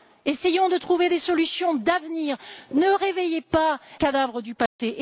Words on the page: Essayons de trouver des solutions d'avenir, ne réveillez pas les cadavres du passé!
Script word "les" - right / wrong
wrong